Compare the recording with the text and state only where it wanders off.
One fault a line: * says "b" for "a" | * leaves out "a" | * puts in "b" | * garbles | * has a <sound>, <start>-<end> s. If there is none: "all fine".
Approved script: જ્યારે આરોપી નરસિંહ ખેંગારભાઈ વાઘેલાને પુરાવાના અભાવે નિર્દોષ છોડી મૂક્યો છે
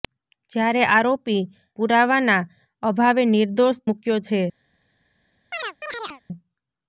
* leaves out "નરસિંહ ખેંગારભાઈ વાઘેલાને"
* leaves out "છોડી"
* has a chirp, 5.5-6.2 s